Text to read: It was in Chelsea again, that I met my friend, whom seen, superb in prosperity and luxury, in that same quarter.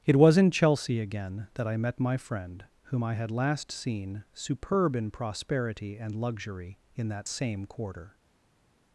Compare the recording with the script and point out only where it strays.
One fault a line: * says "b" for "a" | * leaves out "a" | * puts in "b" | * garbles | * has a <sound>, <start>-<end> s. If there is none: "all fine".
* puts in "I had last"